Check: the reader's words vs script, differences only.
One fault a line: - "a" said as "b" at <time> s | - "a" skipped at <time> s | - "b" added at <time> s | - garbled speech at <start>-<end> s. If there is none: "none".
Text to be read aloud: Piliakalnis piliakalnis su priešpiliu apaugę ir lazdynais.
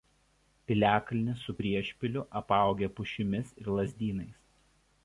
- "piliakalnis" skipped at 1.4 s
- "pušimis" added at 3.0 s